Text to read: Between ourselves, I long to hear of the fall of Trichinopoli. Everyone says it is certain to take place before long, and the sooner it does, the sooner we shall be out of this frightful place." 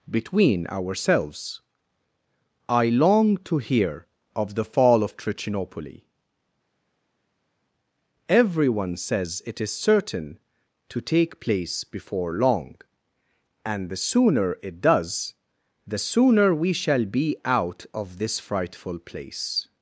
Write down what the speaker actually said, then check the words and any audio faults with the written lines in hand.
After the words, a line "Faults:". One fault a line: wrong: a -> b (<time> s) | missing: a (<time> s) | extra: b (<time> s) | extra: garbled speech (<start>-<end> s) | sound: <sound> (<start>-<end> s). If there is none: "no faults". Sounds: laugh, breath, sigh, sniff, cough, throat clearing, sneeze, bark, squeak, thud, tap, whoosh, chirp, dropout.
Between ourselves, I long to hear of the fall of Trichinopoli. Everyone says it is certain to take place before long, and the sooner it does, the sooner we shall be out of this frightful place."
Faults:
no faults